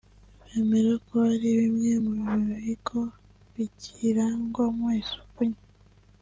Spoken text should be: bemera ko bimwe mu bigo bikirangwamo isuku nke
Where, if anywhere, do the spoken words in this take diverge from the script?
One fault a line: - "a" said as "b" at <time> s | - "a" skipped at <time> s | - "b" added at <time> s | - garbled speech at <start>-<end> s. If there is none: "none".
- "hari" added at 1.3 s